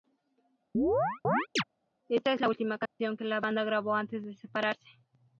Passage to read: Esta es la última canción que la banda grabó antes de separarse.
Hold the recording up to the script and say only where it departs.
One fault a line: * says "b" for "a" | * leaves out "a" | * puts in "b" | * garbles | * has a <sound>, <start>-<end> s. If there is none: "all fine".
* has a chirp, 0.7-1.6 s
* has a dropout, 2.9-3.0 s